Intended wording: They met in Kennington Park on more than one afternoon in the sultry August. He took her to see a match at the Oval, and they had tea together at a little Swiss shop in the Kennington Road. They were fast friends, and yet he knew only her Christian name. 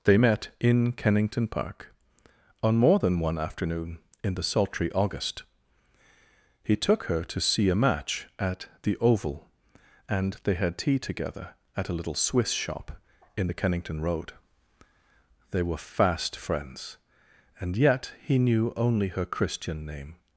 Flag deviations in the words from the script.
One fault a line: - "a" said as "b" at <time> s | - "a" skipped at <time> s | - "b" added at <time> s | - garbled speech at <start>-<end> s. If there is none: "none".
none